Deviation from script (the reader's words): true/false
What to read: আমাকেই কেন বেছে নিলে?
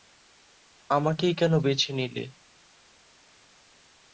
false